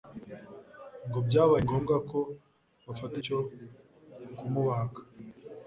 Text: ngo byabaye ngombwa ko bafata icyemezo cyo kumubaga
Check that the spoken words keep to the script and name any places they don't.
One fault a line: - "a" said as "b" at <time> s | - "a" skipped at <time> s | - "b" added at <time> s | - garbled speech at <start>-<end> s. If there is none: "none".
- "icyemezo" skipped at 3.1 s